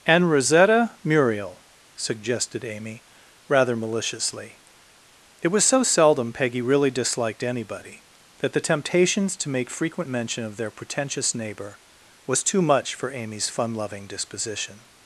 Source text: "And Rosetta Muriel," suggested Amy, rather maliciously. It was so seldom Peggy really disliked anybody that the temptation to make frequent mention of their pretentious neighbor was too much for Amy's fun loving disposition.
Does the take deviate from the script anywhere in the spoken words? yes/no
yes